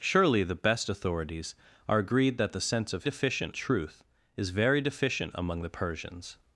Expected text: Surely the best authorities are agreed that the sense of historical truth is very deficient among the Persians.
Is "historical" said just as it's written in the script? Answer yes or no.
no